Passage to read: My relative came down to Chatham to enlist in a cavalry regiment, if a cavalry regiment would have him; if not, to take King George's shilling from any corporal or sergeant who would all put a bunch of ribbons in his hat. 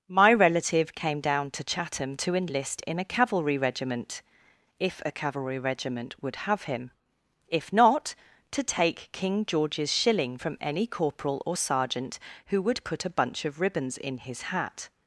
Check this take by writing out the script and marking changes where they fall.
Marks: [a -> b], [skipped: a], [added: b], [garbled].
My relative came down to Chatham to enlist in a cavalry regiment, if a cavalry regiment would have him; if not, to take King George's shilling from any corporal or sergeant who would [skipped: all] put a bunch of ribbons in his hat.